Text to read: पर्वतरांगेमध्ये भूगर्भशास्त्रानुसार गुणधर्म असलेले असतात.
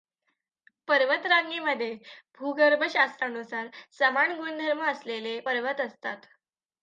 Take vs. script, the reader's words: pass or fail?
fail